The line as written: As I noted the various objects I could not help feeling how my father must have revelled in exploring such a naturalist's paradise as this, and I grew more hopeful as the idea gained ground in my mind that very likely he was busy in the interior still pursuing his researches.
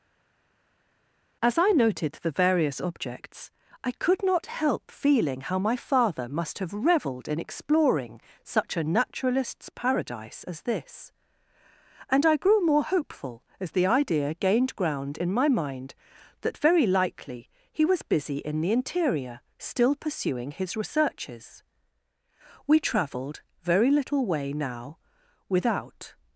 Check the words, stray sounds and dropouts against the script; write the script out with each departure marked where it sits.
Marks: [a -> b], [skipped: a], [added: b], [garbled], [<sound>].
As I noted the various objects I could not help feeling how my father must have revelled in exploring such a naturalist's paradise as this, and I grew more hopeful as the idea gained ground in my mind that very likely he was busy in the interior still pursuing his researches. [added: We travelled very little way now without]